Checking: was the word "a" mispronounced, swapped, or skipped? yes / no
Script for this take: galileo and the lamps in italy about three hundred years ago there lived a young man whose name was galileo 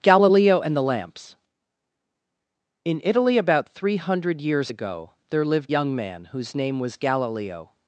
yes